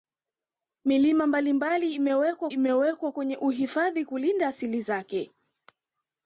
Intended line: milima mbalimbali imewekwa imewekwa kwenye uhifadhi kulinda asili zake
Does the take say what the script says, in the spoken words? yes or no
yes